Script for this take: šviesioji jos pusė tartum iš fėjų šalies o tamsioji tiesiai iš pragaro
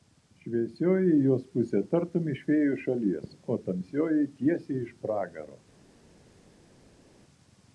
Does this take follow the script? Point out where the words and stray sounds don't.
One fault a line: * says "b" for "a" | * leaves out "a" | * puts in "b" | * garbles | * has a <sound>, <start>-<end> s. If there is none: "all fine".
all fine